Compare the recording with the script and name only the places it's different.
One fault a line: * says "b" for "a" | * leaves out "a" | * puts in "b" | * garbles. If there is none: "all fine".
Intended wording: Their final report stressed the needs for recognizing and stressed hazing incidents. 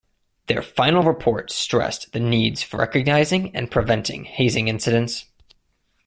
* says "preventing" for "stressed"